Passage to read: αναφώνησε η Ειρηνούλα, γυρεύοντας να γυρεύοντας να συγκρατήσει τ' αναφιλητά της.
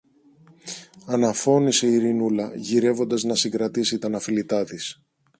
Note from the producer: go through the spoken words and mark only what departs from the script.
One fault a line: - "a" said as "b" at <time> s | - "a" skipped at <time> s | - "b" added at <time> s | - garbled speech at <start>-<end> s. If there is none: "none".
- "γυρεύοντας να" skipped at 3.4 s